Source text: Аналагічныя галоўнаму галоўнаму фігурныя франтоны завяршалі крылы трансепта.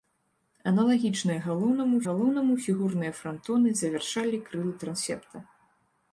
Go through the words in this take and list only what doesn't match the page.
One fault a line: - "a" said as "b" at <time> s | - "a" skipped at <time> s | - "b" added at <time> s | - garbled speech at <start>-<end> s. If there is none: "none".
none